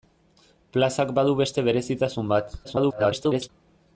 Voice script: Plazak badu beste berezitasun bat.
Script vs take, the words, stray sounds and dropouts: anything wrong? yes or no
yes